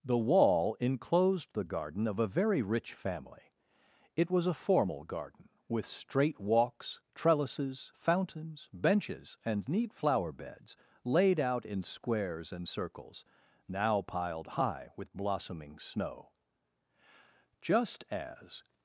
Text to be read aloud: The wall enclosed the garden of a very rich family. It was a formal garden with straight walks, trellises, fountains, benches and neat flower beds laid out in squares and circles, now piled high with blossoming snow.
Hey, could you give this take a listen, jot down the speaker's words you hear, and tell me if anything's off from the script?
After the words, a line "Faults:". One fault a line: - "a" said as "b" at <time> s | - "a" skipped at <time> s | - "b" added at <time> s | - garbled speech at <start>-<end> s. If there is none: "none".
The wall enclosed the garden of a very rich family. It was a formal garden with straight walks, trellises, fountains, benches and neat flower beds laid out in squares and circles, now piled high with blossoming snow. Just as
Faults:
- "Just as" added at 17.6 s